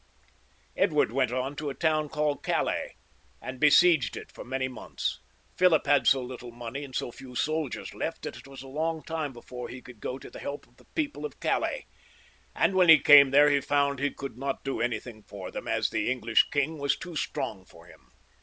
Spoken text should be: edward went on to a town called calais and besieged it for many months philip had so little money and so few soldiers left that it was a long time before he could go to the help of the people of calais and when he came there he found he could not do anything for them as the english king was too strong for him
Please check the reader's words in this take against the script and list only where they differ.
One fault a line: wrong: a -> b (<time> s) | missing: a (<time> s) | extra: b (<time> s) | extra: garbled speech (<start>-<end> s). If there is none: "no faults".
no faults